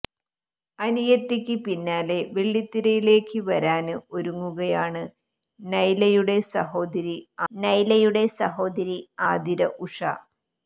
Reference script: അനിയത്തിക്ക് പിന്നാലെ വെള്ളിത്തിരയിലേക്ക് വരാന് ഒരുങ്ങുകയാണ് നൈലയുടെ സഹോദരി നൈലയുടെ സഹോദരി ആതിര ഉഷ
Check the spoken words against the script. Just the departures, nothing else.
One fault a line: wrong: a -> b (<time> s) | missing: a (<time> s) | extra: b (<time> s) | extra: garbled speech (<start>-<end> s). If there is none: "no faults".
no faults